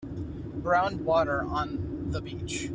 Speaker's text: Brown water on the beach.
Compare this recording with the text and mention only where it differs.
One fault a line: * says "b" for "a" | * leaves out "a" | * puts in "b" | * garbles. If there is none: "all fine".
all fine